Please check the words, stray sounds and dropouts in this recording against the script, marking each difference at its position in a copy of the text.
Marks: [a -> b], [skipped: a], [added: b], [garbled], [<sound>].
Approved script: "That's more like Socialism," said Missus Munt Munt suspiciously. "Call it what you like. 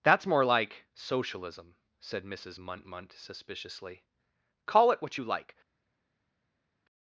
"That's more like Socialism," said Missus Munt Munt suspiciously. "Call it what you like.